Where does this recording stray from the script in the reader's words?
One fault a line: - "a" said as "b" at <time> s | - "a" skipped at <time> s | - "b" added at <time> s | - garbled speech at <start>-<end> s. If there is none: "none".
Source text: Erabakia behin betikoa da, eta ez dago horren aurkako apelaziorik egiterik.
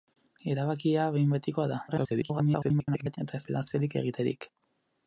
- garbled speech at 1.9-3.2 s
- "dago horren aurkako" skipped at 3.4 s